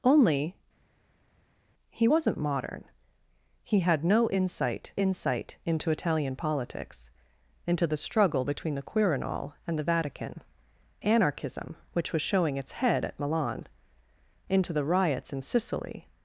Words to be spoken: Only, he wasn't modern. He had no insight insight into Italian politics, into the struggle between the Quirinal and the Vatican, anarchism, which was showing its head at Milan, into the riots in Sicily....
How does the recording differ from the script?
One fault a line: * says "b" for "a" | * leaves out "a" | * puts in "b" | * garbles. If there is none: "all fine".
all fine